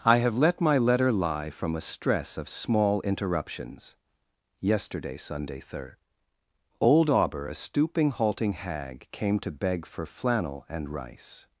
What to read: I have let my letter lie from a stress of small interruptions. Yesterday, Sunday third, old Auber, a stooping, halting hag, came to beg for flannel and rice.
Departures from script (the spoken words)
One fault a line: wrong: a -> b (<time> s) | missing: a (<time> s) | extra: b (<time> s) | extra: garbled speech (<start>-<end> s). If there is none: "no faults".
no faults